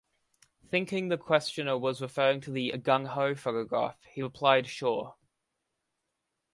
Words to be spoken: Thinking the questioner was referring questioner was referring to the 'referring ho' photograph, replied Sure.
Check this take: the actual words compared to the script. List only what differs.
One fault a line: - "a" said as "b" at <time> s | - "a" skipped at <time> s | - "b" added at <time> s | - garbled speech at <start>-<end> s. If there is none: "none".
- "questioner was referring" skipped at 2.4 s
- "referring" said as "gung" at 2.7 s
- "he" added at 4.0 s